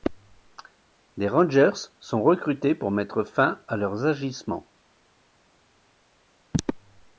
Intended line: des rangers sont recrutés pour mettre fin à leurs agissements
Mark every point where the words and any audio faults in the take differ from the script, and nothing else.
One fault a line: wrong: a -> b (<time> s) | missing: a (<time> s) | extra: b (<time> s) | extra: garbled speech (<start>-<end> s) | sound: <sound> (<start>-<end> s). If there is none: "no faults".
no faults